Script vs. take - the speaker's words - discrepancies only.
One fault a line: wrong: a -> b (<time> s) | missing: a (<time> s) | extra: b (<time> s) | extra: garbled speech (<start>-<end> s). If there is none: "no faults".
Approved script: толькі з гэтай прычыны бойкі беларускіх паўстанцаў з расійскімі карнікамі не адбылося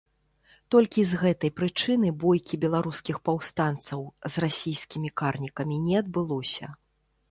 no faults